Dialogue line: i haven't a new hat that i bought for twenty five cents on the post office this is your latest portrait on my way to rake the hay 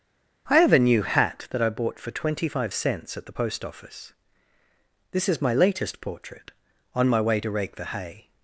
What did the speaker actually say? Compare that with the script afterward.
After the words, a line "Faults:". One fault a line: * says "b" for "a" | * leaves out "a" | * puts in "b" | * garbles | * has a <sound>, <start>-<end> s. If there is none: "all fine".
i have a new hat that i bought for twenty five cents at the post office this is my latest portrait on my way to rake the hay
Faults:
* says "have" for "haven't"
* says "at" for "on"
* says "my" for "your"